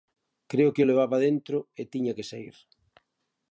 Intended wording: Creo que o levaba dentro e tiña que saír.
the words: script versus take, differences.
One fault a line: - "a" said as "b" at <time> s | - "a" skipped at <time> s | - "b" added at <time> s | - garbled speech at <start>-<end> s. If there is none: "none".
none